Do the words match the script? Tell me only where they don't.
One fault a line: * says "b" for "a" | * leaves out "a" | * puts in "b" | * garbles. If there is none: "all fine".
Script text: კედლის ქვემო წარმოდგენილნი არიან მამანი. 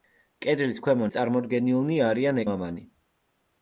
all fine